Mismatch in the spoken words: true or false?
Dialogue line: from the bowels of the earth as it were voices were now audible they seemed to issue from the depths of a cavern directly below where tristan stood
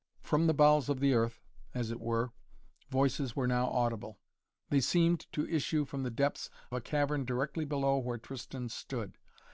true